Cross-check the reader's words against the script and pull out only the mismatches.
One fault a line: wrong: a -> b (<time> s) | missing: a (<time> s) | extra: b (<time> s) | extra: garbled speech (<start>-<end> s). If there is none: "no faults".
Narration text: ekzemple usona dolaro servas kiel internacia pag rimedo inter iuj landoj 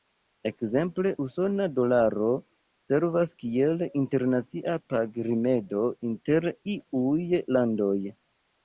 no faults